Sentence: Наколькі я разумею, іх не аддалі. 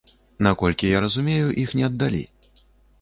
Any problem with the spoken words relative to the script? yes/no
no